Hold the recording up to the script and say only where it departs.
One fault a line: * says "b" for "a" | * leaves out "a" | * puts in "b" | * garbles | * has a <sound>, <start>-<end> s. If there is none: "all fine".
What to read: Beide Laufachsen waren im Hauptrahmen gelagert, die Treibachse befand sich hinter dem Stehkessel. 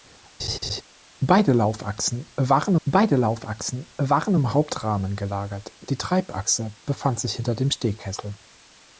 * has a laugh, 0.4-0.8 s
* puts in "beide Laufachsen waren"